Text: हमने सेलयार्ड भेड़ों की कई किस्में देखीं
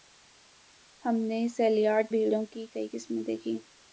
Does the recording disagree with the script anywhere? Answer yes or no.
no